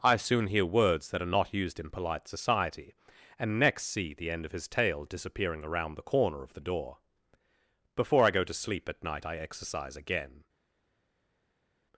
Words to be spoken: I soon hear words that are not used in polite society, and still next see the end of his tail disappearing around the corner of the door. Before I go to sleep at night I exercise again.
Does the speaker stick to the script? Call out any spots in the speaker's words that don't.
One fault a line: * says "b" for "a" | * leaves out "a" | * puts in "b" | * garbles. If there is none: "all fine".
* leaves out "still"